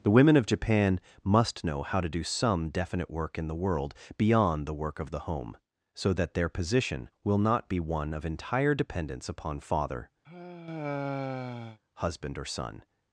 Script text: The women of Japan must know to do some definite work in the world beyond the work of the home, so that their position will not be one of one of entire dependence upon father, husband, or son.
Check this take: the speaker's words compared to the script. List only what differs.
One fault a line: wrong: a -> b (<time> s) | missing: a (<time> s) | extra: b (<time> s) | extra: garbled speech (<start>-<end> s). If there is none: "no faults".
extra: how (1.8 s)
missing: one of (8.2 s)